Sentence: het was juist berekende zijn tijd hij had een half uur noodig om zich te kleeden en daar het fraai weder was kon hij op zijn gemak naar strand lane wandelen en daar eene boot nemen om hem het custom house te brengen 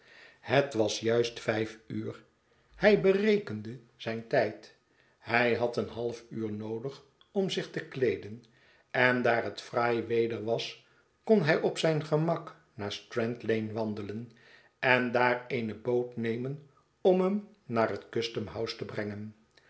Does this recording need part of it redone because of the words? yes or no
yes